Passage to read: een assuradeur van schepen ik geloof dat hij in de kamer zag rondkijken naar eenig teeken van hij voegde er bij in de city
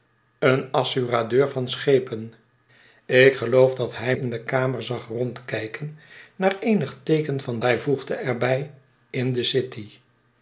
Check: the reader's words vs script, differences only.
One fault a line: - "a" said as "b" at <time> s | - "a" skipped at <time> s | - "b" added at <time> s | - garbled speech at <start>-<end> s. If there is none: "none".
none